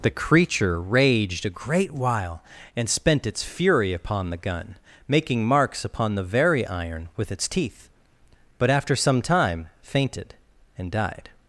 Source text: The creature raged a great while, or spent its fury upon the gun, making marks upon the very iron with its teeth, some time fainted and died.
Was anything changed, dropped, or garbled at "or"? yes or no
yes